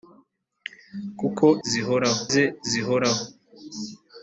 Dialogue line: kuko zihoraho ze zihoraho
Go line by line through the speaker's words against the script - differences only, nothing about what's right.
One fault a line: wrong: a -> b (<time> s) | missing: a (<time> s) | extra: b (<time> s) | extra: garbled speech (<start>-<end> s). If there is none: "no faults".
no faults